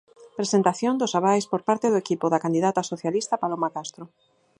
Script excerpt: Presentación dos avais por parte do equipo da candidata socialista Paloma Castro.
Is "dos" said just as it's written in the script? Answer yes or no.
yes